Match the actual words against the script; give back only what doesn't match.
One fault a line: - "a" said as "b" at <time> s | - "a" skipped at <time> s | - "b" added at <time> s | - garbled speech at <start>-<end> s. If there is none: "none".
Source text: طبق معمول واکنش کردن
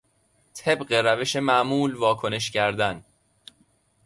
- "روش" added at 0.9 s